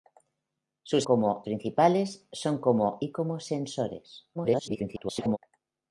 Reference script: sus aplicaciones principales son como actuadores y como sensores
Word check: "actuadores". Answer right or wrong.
wrong